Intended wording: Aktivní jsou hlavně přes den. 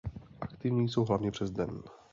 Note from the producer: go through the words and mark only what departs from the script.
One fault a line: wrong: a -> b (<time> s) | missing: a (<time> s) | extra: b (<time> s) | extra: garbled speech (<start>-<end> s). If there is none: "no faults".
no faults